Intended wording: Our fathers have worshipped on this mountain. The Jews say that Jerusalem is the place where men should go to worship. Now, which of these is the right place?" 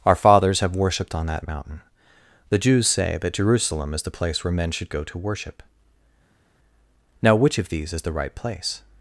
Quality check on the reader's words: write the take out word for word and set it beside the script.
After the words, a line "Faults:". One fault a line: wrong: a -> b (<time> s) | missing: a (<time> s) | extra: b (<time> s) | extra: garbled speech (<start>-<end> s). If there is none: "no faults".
Our fathers have worshipped on that mountain. The Jews say that Jerusalem is the place where men should go to worship. Now, which of these is the right place?"
Faults:
wrong: this -> that (1.3 s)